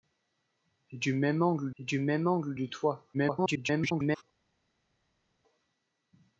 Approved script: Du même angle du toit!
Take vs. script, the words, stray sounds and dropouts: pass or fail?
fail